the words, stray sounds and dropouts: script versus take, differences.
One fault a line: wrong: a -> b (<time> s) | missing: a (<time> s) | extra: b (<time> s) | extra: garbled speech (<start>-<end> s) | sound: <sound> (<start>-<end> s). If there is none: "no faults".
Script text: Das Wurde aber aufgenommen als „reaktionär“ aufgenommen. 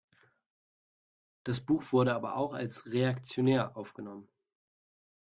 extra: Buch (1.6 s)
wrong: aufgenommen -> auch (2.4 s)